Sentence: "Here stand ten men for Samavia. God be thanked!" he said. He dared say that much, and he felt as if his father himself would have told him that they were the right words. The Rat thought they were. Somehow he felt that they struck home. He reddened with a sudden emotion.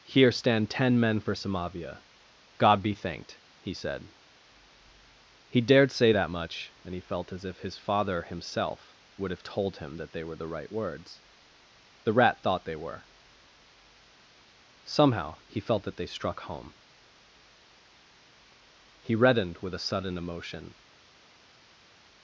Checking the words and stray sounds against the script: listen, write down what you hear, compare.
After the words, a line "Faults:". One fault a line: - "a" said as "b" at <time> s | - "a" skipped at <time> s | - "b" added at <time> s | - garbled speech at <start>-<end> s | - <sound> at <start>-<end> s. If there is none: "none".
"Here stand ten men for Samavia. God be thanked!" he said. He dared say that much, and he felt as if his father himself would have told him that they were the right words. The Rat thought they were. Somehow he felt that they struck home. He reddened with a sudden emotion.
Faults:
none